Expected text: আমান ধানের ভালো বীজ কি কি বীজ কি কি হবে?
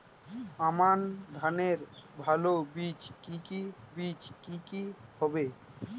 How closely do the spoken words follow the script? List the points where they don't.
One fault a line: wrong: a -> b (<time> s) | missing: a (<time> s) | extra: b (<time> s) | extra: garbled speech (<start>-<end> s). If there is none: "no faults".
no faults